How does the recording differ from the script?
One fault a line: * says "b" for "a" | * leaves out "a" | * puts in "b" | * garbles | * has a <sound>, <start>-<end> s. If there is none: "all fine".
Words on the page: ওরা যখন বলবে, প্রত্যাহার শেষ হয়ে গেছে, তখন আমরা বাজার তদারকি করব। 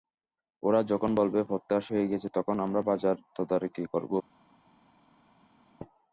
* leaves out "শেষ"